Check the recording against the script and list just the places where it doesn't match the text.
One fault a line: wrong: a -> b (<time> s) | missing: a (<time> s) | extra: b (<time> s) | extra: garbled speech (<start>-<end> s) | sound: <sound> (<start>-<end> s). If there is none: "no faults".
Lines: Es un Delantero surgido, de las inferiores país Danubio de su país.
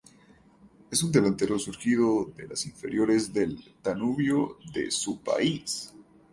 wrong: país -> del (3.3 s)